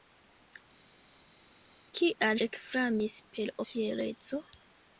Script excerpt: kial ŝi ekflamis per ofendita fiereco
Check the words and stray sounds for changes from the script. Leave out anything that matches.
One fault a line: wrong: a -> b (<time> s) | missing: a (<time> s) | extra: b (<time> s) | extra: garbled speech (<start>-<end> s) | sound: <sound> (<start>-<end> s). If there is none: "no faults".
missing: ŝi (2.4 s)
missing: ofendita (3.5 s)